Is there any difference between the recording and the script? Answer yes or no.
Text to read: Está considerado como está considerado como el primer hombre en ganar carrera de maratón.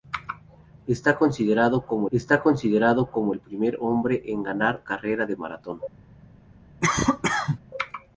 no